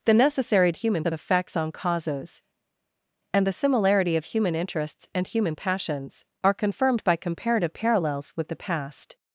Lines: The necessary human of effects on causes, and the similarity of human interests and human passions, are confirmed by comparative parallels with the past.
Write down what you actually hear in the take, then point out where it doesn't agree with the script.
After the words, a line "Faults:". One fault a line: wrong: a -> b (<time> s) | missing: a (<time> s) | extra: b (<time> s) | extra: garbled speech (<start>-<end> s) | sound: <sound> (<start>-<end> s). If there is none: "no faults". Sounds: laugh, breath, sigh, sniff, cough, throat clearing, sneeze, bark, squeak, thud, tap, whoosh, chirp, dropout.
The necessary human of effects on causes, and the similarity of human interests and human passions, are confirmed by comparative parallels with the past.
Faults:
no faults